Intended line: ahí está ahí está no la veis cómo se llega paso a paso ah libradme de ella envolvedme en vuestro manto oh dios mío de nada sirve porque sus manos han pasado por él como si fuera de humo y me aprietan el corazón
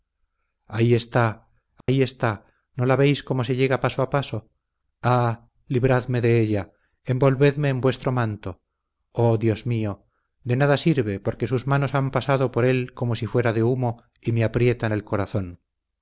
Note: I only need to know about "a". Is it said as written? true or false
true